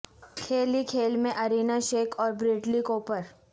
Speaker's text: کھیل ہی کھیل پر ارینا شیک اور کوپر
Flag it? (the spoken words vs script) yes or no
yes